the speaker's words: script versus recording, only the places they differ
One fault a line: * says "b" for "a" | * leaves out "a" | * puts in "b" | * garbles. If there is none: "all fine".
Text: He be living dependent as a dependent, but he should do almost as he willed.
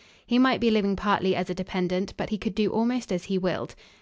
* puts in "might"
* says "partly" for "dependent"
* says "could" for "should"